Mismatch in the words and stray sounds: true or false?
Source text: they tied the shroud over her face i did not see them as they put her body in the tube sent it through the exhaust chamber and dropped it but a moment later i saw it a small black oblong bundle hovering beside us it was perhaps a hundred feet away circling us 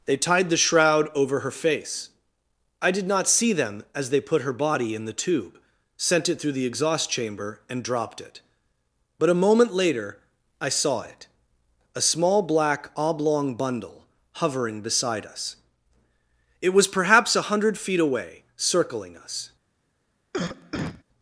true